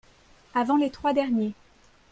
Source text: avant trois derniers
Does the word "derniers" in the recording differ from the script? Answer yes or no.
no